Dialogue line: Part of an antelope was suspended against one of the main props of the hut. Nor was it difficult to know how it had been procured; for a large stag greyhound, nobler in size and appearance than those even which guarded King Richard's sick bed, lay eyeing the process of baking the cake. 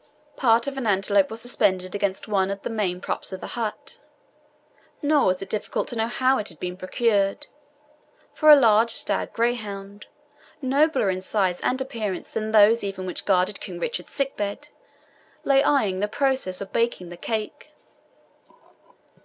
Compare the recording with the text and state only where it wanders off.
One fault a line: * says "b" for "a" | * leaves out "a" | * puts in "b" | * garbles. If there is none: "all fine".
all fine